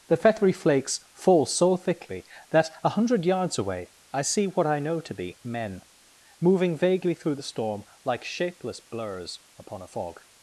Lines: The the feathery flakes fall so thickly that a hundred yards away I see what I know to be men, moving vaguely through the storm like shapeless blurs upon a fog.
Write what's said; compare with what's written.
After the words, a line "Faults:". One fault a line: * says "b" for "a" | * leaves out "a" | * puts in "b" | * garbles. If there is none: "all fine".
The feathery flakes fall so thickly that a hundred yards away I see what I know to be men, moving vaguely through the storm like shapeless blurs upon a fog.
Faults:
* leaves out "the"